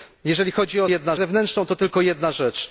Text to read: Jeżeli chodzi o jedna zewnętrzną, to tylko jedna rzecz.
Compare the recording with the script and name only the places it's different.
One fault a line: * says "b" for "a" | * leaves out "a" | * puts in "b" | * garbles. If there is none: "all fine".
all fine